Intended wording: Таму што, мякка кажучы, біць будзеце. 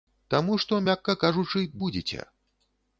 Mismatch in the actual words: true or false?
true